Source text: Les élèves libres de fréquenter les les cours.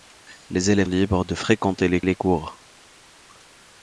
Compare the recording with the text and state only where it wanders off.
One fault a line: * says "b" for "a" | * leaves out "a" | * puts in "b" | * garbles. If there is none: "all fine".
all fine